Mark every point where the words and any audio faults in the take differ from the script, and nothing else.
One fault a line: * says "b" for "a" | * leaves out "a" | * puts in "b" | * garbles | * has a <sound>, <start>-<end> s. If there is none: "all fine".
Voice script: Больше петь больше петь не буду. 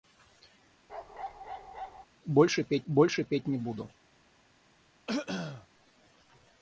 * has a bark, 0.9-2.1 s
* has a throat clearing, 5.1-5.7 s